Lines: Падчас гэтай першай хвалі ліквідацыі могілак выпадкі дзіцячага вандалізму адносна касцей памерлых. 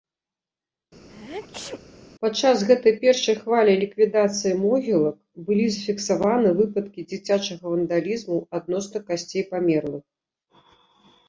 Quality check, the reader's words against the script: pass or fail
fail